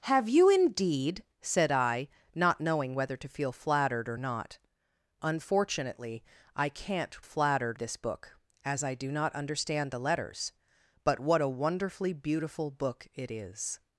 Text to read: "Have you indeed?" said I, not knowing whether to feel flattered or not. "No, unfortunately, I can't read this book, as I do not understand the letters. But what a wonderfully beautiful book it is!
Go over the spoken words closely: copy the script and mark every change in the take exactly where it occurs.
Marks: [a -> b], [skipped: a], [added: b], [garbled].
"Have you indeed?" said I, not knowing whether to feel flattered or not. [skipped: "No,] unfortunately, I can't [read -> flattered] this book, as I do not understand the letters. But what a wonderfully beautiful book it is!